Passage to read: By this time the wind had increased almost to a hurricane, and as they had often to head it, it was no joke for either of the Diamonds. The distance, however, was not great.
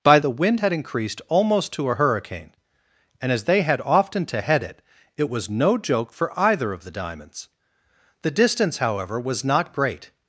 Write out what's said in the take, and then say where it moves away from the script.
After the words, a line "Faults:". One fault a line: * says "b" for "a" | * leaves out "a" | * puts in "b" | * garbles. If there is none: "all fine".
By the wind had increased almost to a hurricane, and as they had often to head it, it was no joke for either of the Diamonds. The distance, however, was not great.
Faults:
* leaves out "this time"